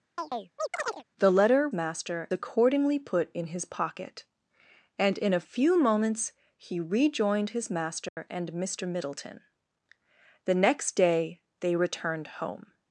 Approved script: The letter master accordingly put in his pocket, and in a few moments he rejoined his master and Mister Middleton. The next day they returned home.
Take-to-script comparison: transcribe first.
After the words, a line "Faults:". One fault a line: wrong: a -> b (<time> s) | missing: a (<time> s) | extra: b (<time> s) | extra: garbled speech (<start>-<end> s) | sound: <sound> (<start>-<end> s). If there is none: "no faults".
The letter master accordingly put in his pocket, and in a few moments he rejoined his master and Mister Middleton. The next day they returned home.
Faults:
sound: chirp (0.2-1.0 s)
sound: dropout (8.1-8.2 s)